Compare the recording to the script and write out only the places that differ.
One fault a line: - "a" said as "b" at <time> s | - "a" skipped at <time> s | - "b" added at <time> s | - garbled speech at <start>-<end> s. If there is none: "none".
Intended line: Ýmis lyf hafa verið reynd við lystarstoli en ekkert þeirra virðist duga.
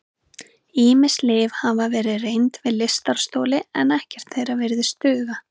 none